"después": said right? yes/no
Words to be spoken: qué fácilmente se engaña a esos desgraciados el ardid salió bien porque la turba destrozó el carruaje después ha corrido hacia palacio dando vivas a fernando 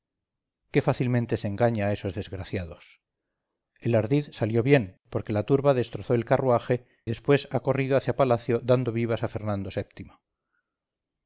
yes